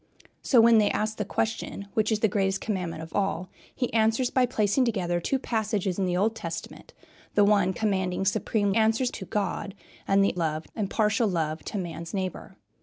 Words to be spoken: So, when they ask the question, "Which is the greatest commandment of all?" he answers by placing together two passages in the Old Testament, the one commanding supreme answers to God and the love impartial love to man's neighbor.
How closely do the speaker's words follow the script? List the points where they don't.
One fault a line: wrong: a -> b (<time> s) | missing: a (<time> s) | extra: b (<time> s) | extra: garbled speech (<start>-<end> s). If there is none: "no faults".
no faults